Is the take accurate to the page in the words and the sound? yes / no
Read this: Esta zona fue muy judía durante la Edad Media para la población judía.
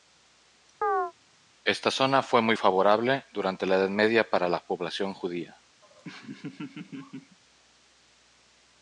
no